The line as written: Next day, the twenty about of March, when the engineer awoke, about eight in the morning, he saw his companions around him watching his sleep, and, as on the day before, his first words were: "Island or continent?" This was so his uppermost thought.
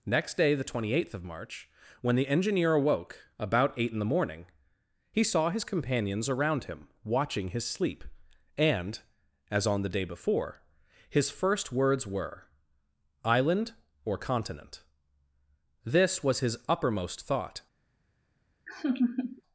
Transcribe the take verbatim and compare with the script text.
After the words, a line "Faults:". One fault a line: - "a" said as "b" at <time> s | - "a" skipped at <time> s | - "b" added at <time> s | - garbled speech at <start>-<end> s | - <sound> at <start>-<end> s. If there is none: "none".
Next day, the twenty eighth of March, when the engineer awoke, about eight in the morning, he saw his companions around him watching his sleep, and, as on the day before, his first words were: "Island or continent?" This was his uppermost thought.
Faults:
- "about" said as "eighth" at 0.9 s
- "so" skipped at 16.4 s
- laugh at 18.7-19.4 s